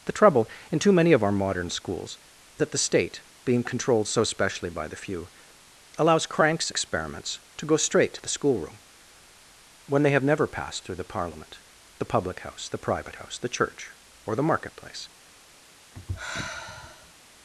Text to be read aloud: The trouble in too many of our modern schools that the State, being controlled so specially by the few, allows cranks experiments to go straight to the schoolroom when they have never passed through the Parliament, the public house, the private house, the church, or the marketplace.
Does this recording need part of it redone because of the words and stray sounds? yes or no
yes